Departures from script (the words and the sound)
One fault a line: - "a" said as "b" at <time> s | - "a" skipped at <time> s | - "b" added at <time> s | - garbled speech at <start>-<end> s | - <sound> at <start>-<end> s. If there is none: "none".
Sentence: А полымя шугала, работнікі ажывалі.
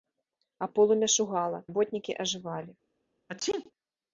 - sneeze at 3.3-3.7 s